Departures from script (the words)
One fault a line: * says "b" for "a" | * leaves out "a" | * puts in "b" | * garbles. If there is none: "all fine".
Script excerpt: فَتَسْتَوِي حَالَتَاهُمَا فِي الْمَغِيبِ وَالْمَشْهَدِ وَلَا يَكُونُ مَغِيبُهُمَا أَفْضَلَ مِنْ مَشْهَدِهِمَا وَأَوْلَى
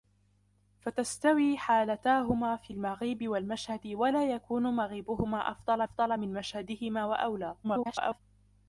* puts in "أَفْضَلَ"
* garbles